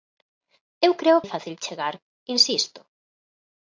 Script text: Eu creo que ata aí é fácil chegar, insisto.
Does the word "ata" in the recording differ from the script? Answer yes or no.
yes